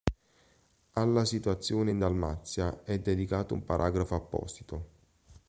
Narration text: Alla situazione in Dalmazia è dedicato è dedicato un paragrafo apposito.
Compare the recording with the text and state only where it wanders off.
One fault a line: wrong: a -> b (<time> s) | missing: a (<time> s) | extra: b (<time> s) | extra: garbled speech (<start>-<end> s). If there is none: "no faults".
missing: è dedicato (3.5 s)